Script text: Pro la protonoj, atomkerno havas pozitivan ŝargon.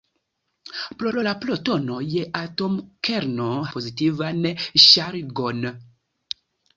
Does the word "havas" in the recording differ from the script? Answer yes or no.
yes